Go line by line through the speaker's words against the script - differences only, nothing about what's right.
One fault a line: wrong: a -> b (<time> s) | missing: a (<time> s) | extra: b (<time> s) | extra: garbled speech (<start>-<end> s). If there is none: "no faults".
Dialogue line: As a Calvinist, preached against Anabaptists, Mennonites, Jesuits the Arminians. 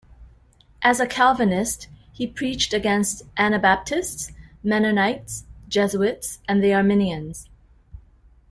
extra: he (2.1 s)
extra: and (6.5 s)